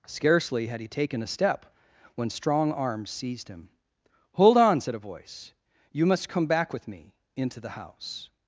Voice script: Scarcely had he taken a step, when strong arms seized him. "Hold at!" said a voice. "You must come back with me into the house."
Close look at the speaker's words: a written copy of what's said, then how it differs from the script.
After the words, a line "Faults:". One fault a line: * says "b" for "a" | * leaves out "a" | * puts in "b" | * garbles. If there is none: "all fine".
Scarcely had he taken a step, when strong arms seized him. "Hold on!" said a voice. "You must come back with me into the house."
Faults:
* says "on" for "at"